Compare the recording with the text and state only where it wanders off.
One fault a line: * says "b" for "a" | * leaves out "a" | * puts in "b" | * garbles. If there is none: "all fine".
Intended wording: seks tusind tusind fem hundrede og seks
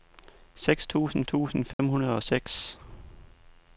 all fine